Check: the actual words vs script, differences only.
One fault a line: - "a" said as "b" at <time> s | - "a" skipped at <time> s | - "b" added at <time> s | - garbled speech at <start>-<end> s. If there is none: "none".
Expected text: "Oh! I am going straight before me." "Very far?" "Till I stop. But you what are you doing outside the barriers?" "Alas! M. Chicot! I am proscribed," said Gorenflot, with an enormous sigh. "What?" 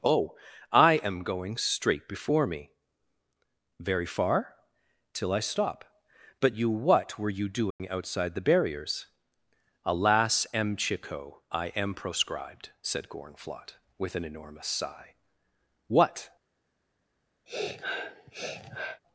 - "are" said as "were" at 7.2 s